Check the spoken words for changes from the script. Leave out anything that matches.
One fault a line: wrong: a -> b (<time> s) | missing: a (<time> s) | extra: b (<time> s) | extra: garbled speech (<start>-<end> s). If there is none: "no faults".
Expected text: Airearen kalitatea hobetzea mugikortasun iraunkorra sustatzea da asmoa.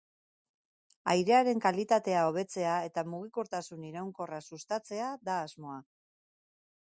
extra: eta (2.9 s)